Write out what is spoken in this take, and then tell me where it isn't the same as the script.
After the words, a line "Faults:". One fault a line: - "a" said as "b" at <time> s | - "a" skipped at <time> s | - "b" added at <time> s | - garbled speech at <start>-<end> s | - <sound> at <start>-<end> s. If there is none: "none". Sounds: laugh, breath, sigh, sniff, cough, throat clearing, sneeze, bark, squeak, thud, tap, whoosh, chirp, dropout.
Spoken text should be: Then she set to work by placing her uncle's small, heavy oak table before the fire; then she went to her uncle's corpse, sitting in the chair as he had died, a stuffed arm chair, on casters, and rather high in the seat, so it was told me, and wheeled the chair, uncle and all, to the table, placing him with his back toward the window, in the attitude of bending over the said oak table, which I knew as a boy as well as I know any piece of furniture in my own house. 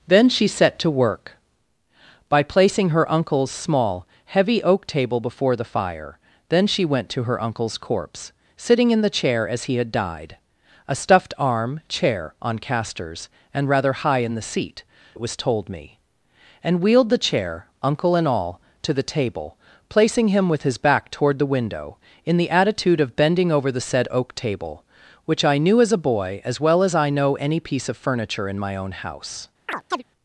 Then she set to work by placing her uncle's small, heavy oak table before the fire; then she went to her uncle's corpse, sitting in the chair as he had died, a stuffed arm chair, on casters, and rather high in the seat, it was told me, and wheeled the chair, uncle and all, to the table, placing him with his back toward the window, in the attitude of bending over the said oak table, which I knew as a boy as well as I know any piece of furniture in my own house.
Faults:
- "so" skipped at 14.8 s
- chirp at 29.7-30.0 s